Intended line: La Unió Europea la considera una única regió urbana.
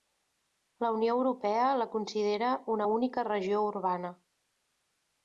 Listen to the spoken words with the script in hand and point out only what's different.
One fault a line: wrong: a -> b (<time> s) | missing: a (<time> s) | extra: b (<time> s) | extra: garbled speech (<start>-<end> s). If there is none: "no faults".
no faults